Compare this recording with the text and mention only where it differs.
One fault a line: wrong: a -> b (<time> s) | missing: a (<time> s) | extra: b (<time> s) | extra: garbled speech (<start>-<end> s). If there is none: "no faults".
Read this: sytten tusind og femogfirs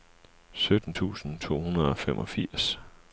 extra: to hundrede (1.4 s)